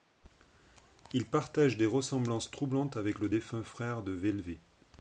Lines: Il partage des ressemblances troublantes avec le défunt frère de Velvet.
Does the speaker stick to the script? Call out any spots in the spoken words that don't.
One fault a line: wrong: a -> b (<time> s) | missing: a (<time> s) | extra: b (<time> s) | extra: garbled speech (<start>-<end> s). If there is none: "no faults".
no faults